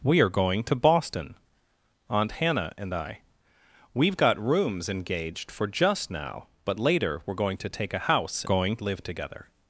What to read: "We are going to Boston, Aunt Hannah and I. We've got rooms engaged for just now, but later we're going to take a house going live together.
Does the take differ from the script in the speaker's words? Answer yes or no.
no